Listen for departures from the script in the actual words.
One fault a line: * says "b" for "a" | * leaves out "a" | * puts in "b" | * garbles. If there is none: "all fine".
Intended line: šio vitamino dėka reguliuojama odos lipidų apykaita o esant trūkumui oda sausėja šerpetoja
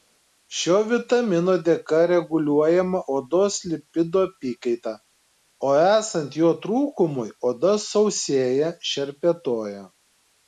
* puts in "jo"